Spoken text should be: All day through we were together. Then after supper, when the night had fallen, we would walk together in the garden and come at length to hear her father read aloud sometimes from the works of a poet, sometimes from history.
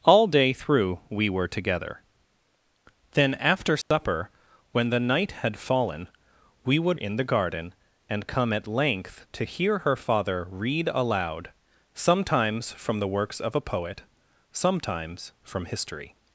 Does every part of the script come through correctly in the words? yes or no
no